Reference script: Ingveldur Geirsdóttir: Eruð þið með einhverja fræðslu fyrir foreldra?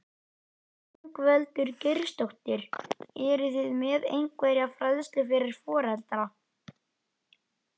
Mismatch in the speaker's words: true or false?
false